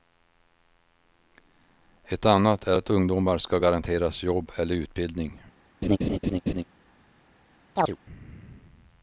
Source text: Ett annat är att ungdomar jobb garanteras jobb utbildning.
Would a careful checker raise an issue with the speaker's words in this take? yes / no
yes